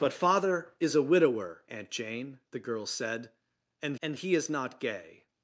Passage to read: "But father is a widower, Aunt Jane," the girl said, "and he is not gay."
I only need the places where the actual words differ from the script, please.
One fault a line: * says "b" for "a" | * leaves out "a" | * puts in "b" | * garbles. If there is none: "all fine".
* puts in "and"